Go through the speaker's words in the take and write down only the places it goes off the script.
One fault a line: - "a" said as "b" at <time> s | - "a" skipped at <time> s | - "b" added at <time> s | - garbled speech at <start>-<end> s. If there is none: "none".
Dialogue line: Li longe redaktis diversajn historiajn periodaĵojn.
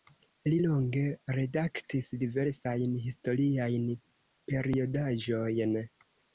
none